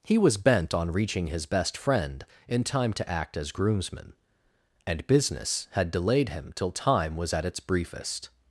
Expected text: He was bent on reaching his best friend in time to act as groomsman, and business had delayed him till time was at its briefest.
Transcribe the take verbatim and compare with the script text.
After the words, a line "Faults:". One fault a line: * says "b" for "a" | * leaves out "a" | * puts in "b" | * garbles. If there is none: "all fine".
He was bent on reaching his best friend in time to act as groomsman, and business had delayed him till time was at its briefest.
Faults:
all fine